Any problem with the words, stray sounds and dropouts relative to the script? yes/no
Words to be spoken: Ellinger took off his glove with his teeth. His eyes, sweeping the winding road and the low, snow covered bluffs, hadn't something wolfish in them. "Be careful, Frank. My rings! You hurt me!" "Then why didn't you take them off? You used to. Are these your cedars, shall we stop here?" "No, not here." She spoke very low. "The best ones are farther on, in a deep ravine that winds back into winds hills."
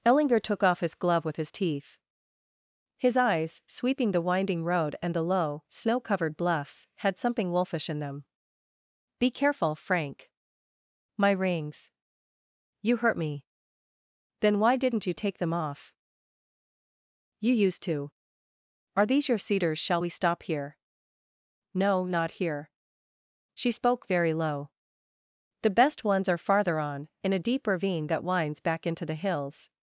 yes